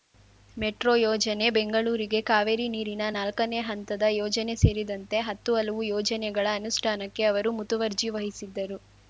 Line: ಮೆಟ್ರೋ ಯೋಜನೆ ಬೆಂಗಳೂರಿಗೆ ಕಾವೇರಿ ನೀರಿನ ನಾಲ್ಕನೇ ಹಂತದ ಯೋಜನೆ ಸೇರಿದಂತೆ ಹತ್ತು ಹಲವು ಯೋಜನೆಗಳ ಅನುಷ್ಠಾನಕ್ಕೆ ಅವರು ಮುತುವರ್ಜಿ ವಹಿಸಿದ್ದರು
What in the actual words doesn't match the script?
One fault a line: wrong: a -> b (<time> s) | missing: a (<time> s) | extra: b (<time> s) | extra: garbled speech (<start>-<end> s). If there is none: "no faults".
no faults